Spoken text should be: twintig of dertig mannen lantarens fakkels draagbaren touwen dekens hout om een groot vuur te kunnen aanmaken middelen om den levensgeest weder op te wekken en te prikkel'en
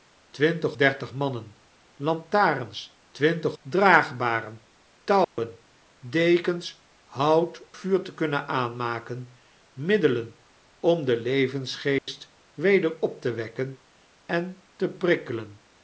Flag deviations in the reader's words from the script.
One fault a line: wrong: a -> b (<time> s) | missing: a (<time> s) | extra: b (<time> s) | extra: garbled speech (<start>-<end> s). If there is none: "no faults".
missing: of (0.8 s)
wrong: fakkels -> twintig (3.1 s)
missing: om een groot (7.6 s)